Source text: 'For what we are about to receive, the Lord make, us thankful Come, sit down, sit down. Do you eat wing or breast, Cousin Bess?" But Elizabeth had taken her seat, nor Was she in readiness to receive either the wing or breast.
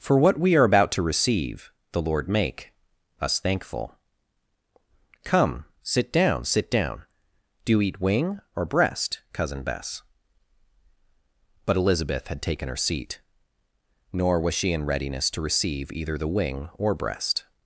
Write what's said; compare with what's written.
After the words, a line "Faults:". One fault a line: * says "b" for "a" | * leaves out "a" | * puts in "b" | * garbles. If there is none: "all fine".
'For what we are about to receive, the Lord make, us thankful Come, sit down, sit down. Do you eat wing or breast, Cousin Bess?" But Elizabeth had taken her seat, nor Was she in readiness to receive either the wing or breast.
Faults:
all fine